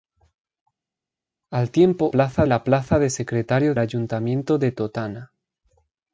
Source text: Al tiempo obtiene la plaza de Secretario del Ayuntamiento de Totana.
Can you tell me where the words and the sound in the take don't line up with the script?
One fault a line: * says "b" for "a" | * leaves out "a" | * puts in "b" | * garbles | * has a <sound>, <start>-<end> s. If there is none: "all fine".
* says "plaza" for "obtiene"
* leaves out "del"